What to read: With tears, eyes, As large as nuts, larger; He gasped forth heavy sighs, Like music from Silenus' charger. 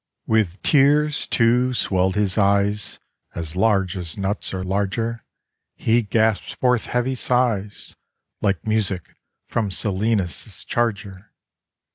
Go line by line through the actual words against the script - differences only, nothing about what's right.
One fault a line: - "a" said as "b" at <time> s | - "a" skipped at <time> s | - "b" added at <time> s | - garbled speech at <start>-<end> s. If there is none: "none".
- "too swelled his" added at 1.3 s
- "or" added at 4.5 s